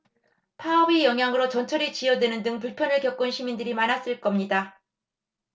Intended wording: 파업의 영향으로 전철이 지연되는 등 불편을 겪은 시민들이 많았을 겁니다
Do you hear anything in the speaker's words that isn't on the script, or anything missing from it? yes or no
no